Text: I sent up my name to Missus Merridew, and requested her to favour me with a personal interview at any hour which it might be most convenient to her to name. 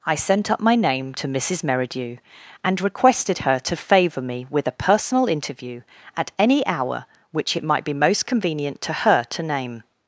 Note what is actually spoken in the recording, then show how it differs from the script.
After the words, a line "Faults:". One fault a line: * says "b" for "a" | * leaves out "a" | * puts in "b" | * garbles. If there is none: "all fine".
I sent up my name to Missus Merridew, and requested her to favour me with a personal interview at any hour which it might be most convenient to her to name.
Faults:
all fine